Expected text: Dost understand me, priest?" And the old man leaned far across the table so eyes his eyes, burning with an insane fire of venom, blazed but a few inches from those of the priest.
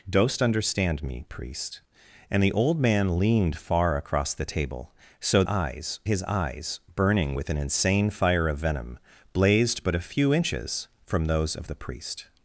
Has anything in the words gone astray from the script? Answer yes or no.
no